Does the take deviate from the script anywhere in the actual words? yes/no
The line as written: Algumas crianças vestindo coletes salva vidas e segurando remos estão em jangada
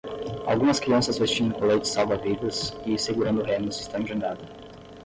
no